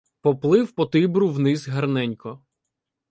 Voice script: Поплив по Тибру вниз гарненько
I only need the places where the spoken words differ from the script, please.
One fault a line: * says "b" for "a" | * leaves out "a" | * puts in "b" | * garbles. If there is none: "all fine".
all fine